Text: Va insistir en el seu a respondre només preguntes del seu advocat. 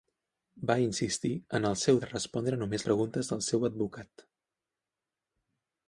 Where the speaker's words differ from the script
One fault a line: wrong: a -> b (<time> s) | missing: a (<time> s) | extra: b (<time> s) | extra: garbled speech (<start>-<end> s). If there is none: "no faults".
no faults